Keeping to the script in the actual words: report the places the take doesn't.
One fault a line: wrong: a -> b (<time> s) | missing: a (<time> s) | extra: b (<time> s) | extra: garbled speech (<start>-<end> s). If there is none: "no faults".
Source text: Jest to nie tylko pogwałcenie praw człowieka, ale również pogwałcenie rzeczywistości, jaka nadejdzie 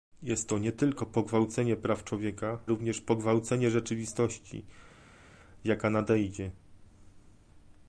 missing: ale (2.6 s)